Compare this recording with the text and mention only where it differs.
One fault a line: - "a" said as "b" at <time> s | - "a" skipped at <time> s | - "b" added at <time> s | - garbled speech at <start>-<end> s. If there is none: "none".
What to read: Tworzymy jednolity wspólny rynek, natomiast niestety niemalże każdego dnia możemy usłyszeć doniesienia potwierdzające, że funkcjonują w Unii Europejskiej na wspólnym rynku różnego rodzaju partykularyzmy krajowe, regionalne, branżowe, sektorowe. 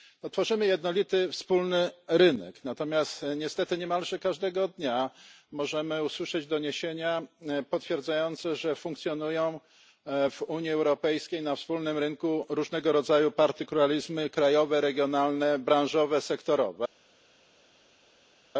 none